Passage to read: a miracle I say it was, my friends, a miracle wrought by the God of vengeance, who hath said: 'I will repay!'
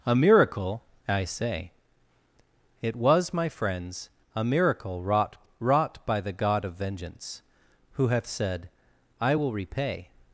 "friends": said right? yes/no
yes